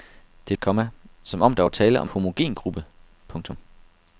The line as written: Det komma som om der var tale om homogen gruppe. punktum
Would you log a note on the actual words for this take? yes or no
no